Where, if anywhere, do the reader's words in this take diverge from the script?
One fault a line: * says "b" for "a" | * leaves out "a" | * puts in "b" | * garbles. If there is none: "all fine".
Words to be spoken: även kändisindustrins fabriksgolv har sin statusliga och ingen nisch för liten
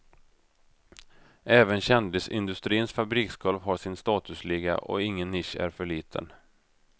* puts in "är"